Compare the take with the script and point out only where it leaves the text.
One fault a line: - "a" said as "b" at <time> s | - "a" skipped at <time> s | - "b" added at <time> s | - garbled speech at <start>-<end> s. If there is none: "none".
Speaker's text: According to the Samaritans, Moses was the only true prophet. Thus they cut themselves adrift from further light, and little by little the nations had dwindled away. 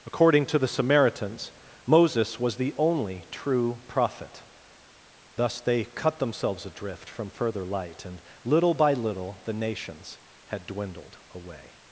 none